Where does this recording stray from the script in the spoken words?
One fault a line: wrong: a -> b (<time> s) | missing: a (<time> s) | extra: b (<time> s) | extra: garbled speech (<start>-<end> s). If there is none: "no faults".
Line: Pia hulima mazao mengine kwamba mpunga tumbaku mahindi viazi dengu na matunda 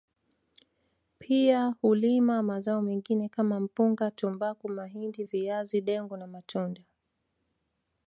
wrong: kwamba -> kama (3.3 s)